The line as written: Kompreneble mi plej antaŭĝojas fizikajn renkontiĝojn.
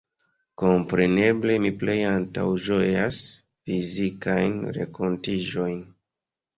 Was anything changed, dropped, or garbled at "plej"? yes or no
no